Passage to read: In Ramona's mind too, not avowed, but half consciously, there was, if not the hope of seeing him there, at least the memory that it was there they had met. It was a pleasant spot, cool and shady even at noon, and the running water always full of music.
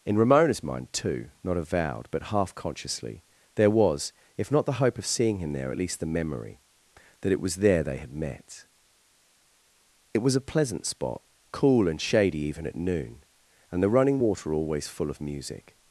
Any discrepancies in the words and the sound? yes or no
no